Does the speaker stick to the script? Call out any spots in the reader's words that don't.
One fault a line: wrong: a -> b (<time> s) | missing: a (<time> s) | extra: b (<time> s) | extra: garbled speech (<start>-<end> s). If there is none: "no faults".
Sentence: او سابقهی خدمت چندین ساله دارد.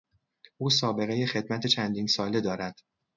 no faults